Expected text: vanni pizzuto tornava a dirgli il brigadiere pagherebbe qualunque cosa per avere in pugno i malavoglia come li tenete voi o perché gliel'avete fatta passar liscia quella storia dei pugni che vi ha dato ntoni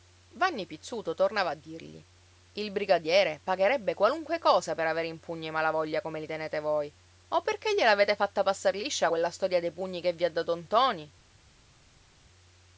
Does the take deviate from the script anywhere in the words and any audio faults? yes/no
no